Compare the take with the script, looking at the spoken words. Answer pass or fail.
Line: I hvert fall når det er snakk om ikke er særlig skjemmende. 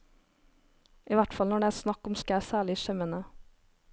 pass